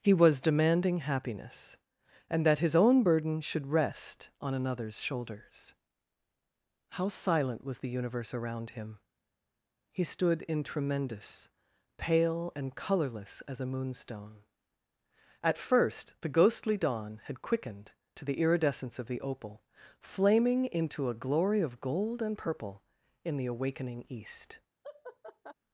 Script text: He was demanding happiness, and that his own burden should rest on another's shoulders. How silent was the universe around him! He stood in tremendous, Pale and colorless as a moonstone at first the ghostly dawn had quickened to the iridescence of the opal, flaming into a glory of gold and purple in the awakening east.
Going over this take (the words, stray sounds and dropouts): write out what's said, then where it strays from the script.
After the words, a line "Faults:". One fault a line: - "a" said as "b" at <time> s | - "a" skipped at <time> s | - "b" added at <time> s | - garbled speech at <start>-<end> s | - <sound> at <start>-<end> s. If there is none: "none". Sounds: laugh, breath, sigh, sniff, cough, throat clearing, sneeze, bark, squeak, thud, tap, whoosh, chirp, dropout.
He was demanding happiness, and that his own burden should rest on another's shoulders. How silent was the universe around him! He stood in tremendous, Pale and colorless as a moonstone at first the ghostly dawn had quickened to the iridescence of the opal, flaming into a glory of gold and purple in the awakening east.
Faults:
- laugh at 24.8-25.5 s